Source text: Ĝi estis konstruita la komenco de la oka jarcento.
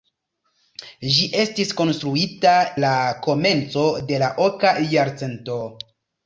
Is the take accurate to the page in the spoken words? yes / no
yes